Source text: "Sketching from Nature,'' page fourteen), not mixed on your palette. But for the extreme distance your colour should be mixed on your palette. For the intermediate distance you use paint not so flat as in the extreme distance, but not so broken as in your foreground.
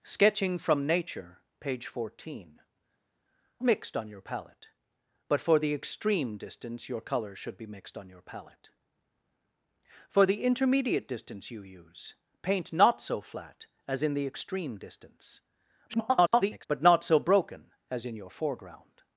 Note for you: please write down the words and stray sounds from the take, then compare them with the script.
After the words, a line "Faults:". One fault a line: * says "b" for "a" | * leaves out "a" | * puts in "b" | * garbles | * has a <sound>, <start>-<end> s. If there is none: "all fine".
"Sketching from Nature,'' page fourteen), mixed on your palette. But for the extreme distance your colour should be mixed on your palette. For the intermediate distance you use paint not so flat as in the extreme distance, [garbled] but not so broken as in your foreground.
Faults:
* leaves out "not"
* garbles